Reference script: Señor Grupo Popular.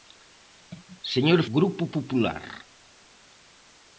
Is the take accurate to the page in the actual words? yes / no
yes